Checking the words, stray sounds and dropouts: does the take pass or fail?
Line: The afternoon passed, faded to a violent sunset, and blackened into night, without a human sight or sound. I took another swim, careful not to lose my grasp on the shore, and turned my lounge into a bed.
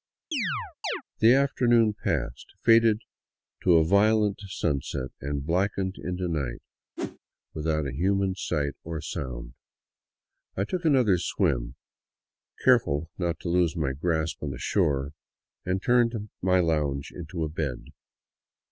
fail